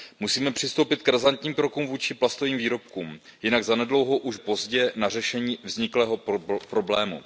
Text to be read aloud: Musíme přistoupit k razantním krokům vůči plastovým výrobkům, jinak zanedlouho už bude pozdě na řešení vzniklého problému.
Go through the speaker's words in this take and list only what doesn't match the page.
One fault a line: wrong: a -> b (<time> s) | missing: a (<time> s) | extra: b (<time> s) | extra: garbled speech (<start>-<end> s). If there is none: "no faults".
missing: bude (4.4 s)